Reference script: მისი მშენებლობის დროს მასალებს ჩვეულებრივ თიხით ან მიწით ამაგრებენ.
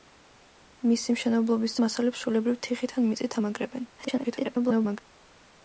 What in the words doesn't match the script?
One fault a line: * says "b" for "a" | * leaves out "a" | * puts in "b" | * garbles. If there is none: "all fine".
* leaves out "დროს"
* garbles